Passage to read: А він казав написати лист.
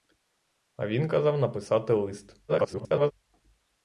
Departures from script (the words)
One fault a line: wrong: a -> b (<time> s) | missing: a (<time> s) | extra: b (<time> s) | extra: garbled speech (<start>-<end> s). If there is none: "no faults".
extra: garbled speech (2.5-3.1 s)